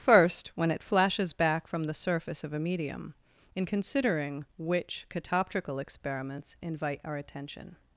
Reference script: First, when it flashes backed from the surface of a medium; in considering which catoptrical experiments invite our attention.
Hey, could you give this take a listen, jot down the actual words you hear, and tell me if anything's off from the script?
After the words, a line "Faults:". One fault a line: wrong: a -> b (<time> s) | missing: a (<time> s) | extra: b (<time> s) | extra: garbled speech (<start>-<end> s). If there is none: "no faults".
First, when it flashes back from the surface of a medium; in considering which catoptrical experiments invite our attention.
Faults:
wrong: backed -> back (1.3 s)